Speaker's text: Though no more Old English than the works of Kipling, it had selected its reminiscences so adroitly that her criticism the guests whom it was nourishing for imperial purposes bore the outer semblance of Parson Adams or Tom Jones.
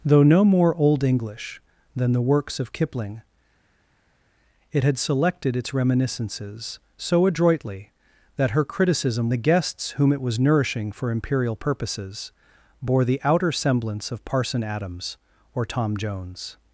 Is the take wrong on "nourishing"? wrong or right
right